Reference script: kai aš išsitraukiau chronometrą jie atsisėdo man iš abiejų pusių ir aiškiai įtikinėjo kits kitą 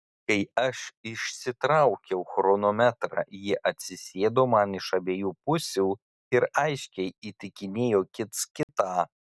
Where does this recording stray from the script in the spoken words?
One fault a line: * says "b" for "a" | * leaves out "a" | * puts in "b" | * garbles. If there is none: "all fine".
all fine